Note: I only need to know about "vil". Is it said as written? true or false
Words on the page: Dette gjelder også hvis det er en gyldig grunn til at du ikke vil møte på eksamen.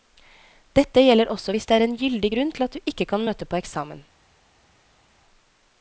false